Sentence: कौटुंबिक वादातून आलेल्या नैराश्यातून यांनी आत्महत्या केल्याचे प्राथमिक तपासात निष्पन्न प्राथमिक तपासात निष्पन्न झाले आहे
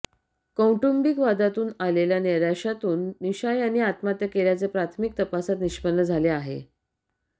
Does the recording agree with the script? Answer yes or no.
no